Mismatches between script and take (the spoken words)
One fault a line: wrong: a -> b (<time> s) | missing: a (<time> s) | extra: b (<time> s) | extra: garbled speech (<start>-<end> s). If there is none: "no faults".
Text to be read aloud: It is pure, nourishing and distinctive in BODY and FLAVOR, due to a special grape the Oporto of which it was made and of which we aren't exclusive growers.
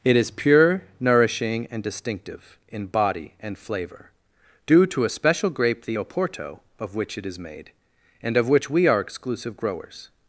wrong: was -> is (7.3 s)
wrong: aren't -> are (8.9 s)